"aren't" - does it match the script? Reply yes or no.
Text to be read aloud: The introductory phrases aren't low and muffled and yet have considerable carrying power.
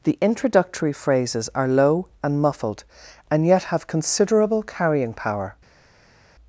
no